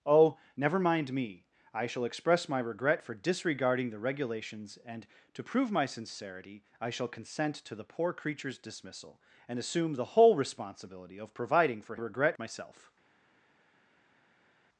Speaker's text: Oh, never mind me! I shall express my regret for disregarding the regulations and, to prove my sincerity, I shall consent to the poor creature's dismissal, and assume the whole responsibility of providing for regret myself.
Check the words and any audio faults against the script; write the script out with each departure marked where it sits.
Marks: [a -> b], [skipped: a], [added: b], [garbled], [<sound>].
Oh, never mind me! I shall express my regret for disregarding the regulations and, to prove my sincerity, I shall consent to the poor creature's dismissal, and assume the whole responsibility of providing for regret myself.